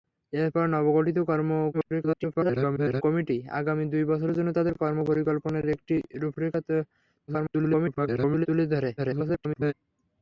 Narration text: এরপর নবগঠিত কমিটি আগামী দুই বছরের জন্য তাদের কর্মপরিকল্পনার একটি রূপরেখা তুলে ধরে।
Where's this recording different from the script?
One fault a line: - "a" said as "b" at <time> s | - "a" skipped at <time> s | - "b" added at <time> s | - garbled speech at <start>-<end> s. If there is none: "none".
- garbled speech at 1.7-3.0 s
- garbled speech at 7.3-8.5 s
- garbled speech at 9.0-9.7 s